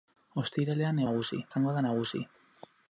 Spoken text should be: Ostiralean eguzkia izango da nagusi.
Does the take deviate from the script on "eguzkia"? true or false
true